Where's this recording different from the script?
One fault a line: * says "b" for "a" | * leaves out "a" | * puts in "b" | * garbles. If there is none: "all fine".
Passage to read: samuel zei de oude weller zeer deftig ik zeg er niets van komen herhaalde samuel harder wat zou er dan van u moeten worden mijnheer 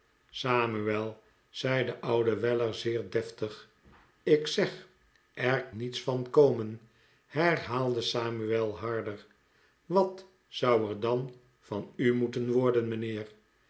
all fine